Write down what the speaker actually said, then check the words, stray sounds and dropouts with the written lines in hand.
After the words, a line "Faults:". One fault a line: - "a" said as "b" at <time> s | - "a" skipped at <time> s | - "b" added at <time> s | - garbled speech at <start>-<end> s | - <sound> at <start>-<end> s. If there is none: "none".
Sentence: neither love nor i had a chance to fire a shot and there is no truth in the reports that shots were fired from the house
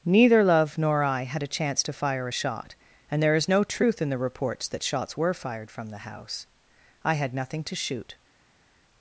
neither love nor i had a chance to fire a shot and there is no truth in the reports that shots were fired from the house i had nothing to shoot
Faults:
- "i had nothing to shoot" added at 7.1 s